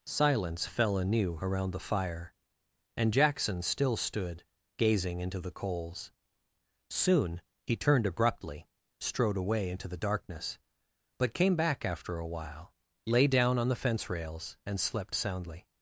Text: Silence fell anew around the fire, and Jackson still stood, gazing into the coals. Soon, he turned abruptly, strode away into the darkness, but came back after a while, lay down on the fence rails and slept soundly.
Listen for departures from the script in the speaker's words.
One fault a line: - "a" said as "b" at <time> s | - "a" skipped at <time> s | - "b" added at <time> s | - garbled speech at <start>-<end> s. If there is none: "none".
none